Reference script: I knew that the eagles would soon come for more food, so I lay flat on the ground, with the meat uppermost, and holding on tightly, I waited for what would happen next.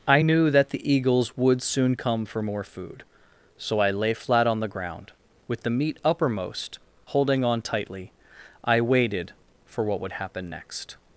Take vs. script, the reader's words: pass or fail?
fail